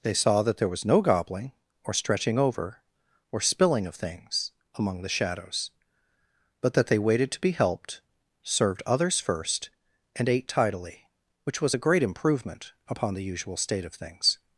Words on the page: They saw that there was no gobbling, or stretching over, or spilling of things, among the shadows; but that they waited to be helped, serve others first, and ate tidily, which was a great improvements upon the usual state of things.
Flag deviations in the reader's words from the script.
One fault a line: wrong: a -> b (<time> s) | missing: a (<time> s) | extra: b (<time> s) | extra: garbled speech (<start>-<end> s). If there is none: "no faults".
wrong: serve -> served (8.4 s)
wrong: improvements -> improvement (12.0 s)